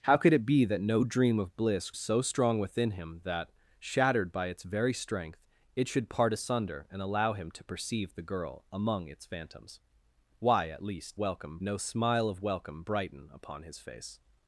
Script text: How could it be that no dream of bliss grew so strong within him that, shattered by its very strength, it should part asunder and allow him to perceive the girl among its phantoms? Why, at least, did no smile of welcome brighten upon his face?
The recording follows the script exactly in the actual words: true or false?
false